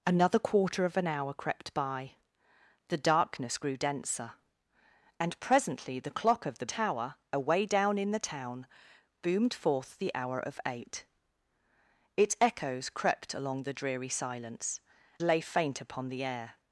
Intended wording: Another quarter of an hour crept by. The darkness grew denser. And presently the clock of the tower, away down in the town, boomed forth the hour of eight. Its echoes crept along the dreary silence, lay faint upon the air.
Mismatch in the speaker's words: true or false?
false